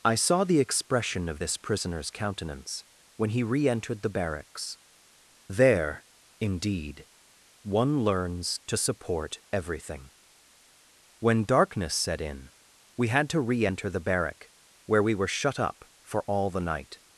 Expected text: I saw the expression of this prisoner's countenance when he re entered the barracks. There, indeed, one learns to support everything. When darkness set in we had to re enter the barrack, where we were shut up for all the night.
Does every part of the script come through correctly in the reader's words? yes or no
yes